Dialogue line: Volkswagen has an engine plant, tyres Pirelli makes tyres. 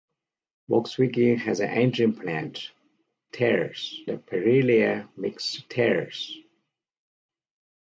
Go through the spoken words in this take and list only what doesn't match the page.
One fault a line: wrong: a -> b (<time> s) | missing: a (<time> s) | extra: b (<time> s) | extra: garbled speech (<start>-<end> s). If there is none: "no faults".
no faults